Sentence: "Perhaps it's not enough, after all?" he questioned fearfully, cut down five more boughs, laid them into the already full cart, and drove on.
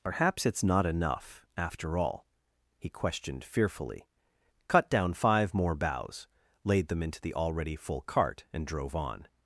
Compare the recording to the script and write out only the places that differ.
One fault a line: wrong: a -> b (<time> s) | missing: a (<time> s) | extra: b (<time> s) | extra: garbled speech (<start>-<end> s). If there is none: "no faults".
no faults